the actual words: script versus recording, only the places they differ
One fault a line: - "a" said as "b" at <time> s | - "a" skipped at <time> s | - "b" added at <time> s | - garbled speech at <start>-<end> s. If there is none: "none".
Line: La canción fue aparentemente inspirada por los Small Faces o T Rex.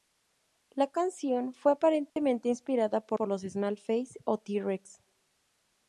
- "por" added at 3.1 s